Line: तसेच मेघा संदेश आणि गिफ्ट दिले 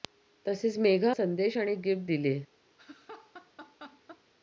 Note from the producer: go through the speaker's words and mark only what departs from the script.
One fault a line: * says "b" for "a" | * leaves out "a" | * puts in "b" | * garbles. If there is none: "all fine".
all fine